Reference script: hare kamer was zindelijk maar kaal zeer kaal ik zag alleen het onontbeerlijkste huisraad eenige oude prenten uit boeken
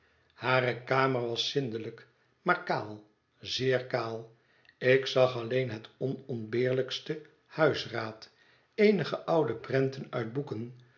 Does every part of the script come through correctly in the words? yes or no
yes